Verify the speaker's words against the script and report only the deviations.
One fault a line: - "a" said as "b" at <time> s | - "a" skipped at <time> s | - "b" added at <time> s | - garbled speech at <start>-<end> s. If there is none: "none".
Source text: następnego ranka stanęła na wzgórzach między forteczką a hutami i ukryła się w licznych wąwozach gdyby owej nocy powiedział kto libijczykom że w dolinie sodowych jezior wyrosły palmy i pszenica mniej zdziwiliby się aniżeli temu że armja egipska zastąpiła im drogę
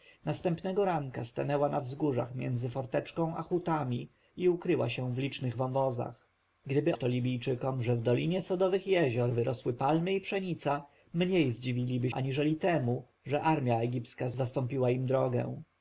- "owej nocy powiedział" skipped at 7.0 s
- "się" skipped at 12.1 s